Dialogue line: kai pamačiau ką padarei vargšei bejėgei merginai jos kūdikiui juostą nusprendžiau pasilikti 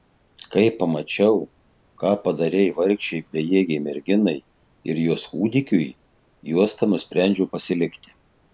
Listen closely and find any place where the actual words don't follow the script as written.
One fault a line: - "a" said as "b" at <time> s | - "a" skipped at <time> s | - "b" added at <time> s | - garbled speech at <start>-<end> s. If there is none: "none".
- "ir" added at 4.9 s